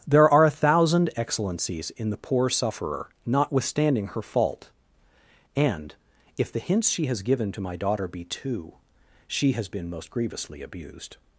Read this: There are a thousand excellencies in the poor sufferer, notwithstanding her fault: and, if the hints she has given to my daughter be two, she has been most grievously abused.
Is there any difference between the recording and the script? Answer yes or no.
no